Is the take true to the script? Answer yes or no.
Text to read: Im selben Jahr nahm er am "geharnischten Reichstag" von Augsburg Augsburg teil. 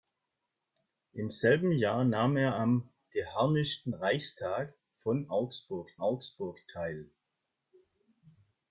yes